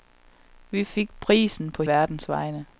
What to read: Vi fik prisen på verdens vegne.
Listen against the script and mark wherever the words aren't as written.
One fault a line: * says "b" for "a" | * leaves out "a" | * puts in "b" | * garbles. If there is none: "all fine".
all fine